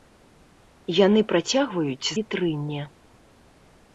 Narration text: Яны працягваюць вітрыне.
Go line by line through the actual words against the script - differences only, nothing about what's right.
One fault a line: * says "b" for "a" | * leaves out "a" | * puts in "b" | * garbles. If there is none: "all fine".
all fine